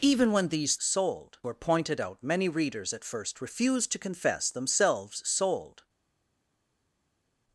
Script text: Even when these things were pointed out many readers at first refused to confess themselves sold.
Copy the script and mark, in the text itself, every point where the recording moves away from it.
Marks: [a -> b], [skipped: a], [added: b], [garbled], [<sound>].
Even when these [things -> sold] were pointed out many readers at first refused to confess themselves sold.